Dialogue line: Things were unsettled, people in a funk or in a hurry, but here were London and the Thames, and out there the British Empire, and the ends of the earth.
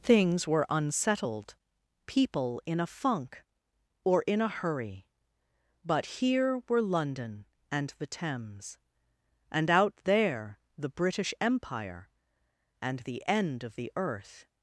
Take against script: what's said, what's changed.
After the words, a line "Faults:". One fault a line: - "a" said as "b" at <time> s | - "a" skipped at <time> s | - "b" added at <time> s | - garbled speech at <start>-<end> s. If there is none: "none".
Things were unsettled, people in a funk or in a hurry, but here were London and the Thames, and out there the British Empire, and the end of the earth.
Faults:
- "ends" said as "end" at 13.3 s